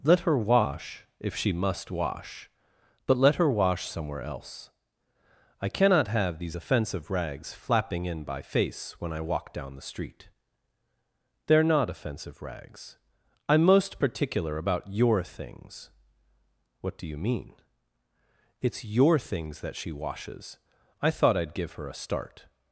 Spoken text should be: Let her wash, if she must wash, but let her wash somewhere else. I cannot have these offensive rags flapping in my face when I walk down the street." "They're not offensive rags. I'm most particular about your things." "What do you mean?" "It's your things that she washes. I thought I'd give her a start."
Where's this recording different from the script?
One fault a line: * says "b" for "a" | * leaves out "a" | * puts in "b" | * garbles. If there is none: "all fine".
* says "by" for "my"